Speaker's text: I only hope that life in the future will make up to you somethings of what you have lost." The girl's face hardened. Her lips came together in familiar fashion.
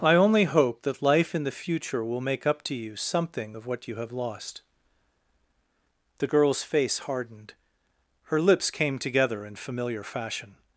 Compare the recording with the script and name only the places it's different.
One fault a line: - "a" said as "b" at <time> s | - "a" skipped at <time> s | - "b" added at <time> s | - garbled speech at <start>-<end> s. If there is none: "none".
- "somethings" said as "something" at 3.0 s